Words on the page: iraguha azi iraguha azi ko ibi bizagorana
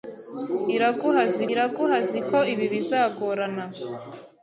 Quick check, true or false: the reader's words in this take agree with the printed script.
true